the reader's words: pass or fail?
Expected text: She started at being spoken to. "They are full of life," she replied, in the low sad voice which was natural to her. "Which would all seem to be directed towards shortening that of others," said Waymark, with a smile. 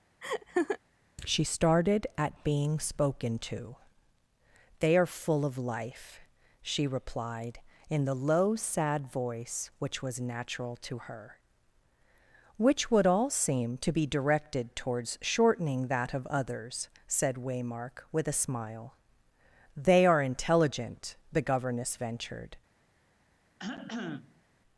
fail